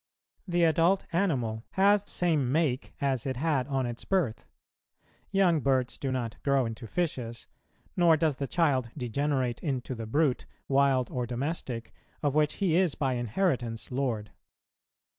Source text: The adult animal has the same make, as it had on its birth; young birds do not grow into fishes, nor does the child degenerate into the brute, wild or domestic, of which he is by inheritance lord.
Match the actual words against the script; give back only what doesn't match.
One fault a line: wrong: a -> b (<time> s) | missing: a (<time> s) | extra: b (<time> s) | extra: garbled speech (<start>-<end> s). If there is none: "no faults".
missing: the (2.0 s)